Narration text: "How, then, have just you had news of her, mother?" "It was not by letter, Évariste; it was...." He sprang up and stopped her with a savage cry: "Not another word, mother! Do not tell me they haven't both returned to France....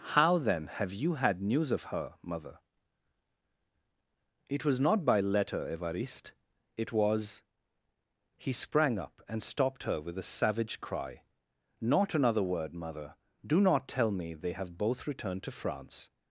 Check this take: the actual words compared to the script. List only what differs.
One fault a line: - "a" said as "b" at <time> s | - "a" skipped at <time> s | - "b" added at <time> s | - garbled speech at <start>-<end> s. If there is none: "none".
- "just" skipped at 0.9 s
- "haven't" said as "have" at 14.5 s